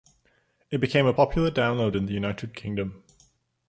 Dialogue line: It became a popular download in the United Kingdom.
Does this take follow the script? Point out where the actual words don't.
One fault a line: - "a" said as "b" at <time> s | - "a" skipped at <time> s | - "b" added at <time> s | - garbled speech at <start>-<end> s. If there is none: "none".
none